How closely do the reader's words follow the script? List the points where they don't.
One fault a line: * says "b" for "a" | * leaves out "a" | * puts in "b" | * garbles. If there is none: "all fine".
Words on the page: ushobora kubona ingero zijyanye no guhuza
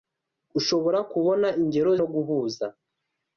* leaves out "zijyanye"